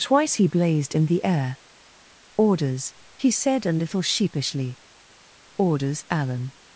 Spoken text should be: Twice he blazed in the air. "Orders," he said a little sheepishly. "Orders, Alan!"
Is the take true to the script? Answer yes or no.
yes